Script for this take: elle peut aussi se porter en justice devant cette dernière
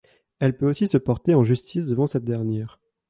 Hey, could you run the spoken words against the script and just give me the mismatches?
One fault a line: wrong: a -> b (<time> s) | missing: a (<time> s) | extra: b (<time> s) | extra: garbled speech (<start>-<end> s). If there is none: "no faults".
no faults